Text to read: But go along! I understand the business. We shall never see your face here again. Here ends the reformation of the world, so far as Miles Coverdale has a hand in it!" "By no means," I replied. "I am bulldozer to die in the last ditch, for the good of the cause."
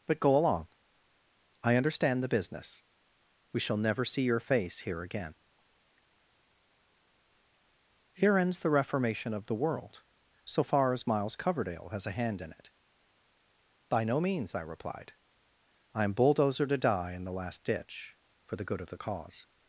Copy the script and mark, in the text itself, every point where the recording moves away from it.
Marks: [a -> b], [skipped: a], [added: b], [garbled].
But go along! I understand the business. We shall never see your face here again. Here ends the reformation of the world, so far as Miles Coverdale has a hand in it!" "By no means," I replied. "I am bulldozer to die in the last ditch, for the good of the cause."